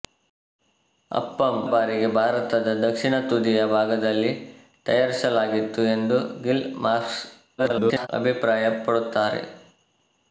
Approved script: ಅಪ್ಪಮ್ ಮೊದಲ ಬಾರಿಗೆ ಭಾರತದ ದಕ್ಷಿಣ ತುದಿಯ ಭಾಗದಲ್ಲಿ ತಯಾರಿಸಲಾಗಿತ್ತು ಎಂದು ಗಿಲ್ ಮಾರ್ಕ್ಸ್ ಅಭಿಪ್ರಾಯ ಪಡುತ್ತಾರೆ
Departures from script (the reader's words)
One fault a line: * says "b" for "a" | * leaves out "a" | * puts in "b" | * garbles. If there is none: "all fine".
* leaves out "ಮೊದಲ"
* garbles